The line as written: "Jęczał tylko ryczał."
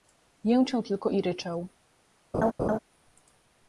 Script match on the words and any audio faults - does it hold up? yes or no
no